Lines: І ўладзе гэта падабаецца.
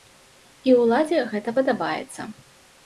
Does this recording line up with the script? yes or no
yes